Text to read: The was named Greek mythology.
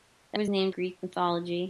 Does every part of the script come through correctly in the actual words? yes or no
yes